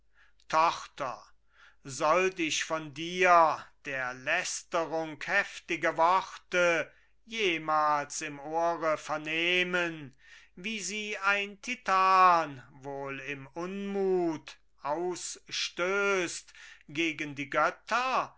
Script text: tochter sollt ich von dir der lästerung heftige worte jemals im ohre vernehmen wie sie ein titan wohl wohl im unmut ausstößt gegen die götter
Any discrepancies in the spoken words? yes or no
yes